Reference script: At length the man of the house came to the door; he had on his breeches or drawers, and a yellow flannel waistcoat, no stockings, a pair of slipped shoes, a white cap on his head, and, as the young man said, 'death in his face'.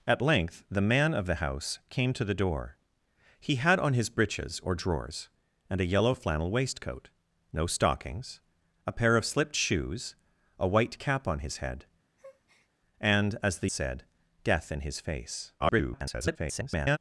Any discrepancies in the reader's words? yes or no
yes